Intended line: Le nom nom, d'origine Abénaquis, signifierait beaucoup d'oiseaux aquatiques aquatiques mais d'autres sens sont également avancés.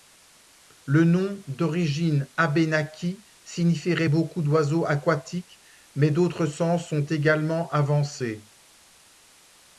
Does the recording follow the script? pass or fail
fail